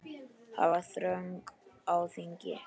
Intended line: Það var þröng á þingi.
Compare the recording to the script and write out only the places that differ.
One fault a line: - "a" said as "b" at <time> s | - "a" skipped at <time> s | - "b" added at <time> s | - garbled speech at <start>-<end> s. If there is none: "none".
none